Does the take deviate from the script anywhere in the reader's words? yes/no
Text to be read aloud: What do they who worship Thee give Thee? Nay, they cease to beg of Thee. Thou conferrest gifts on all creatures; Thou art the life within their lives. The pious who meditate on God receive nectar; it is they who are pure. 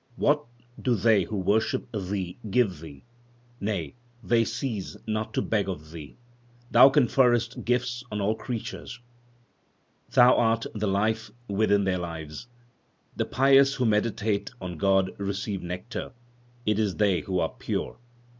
yes